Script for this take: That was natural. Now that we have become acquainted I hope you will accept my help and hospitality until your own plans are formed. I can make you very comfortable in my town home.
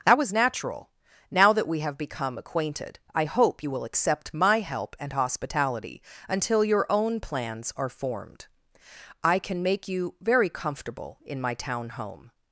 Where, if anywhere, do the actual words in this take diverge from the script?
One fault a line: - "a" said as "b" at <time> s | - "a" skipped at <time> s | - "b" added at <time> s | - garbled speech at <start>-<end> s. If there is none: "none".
none